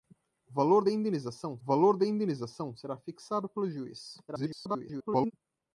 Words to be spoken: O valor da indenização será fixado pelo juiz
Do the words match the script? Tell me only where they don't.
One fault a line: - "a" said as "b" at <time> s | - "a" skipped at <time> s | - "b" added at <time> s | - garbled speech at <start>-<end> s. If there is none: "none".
- "valor da indenização" added at 1.6 s
- garbled speech at 4.3-5.3 s